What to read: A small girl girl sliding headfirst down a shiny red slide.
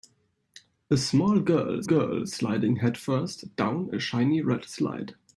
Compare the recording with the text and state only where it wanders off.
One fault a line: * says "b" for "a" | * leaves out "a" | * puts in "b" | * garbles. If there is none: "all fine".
all fine